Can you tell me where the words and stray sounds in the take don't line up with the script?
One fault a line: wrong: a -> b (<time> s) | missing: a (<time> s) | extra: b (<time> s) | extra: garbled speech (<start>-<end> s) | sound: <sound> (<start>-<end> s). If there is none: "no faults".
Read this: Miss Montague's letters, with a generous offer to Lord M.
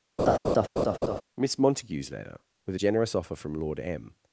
sound: laugh (0.2-1.2 s)
wrong: letters -> letter (2.1 s)
wrong: to -> from (3.3 s)